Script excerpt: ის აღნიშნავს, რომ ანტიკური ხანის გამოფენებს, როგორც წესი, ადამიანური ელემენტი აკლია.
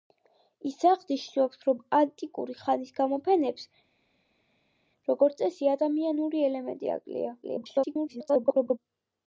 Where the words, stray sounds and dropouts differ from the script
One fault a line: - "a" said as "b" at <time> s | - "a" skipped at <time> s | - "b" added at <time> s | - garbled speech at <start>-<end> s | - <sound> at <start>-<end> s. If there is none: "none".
- garbled speech at 7.4-8.8 s